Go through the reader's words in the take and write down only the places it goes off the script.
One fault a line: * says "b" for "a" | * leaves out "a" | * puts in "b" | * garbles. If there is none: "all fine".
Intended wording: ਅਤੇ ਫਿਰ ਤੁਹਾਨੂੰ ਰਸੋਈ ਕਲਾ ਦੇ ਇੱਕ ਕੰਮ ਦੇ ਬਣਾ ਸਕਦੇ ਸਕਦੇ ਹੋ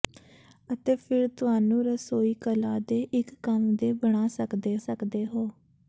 all fine